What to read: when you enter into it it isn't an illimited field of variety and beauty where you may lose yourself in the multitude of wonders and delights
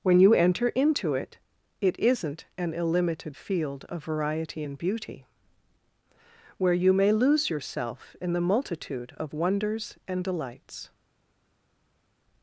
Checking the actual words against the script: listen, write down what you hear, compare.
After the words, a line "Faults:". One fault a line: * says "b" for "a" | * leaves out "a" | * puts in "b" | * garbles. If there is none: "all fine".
when you enter into it it isn't an illimited field of variety and beauty where you may lose yourself in the multitude of wonders and delights
Faults:
all fine